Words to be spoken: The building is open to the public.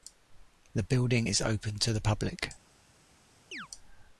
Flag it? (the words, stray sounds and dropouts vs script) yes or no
yes